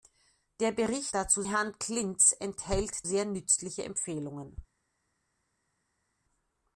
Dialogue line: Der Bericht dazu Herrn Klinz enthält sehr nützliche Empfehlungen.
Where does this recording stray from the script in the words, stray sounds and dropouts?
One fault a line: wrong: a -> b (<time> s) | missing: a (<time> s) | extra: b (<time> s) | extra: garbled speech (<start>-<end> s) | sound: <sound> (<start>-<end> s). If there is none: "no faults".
no faults